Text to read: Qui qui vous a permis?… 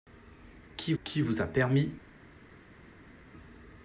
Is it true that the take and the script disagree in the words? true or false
false